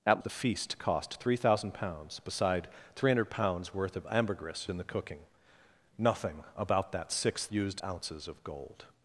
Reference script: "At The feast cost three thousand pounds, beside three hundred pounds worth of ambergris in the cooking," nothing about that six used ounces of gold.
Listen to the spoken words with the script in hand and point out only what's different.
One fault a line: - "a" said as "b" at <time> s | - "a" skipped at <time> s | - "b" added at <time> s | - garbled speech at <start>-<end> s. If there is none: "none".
none